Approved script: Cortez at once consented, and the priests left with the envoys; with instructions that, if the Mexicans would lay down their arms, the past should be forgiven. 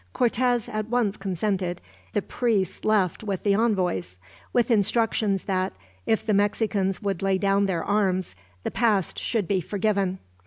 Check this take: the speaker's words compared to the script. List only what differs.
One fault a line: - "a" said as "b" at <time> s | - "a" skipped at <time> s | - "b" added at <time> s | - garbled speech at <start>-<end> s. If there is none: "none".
- "and" skipped at 1.8 s